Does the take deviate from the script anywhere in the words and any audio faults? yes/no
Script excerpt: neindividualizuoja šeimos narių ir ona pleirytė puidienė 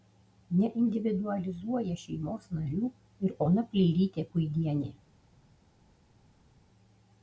no